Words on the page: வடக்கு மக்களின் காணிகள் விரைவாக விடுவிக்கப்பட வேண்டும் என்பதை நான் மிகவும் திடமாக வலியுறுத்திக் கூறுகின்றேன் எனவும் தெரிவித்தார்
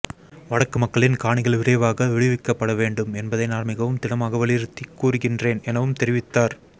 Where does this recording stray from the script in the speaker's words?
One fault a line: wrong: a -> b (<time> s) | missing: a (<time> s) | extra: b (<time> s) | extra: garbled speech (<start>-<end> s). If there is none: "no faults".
no faults